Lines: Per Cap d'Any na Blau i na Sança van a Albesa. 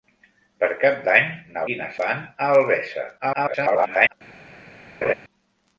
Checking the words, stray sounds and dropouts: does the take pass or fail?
fail